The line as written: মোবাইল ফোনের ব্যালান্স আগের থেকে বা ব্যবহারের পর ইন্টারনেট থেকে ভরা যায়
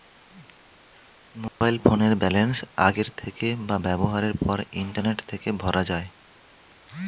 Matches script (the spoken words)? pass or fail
pass